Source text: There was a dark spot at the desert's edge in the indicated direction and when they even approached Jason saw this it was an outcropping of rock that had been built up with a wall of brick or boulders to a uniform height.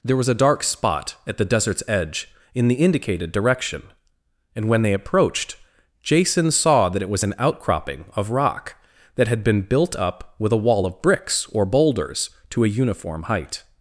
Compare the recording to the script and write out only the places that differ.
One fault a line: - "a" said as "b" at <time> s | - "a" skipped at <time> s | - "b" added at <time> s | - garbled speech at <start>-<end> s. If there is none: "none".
- "even" skipped at 4.9 s
- "this" said as "that" at 6.9 s
- "brick" said as "bricks" at 11.0 s